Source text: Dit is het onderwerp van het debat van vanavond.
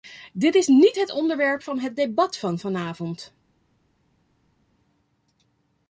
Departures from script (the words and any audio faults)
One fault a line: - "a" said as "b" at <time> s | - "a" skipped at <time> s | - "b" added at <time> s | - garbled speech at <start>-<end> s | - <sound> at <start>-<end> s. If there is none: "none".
- "niet" added at 0.7 s